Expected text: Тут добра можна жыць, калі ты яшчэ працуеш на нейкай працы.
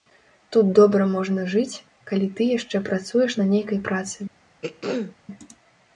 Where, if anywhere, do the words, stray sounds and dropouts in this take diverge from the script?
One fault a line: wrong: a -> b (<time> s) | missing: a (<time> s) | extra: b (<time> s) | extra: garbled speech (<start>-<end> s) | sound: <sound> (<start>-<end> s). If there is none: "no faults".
sound: throat clearing (4.6-5.2 s)